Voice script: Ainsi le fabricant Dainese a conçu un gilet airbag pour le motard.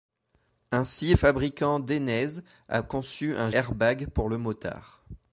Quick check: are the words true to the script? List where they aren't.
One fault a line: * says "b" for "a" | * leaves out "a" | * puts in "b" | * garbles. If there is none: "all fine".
* leaves out "le"
* leaves out "gilet"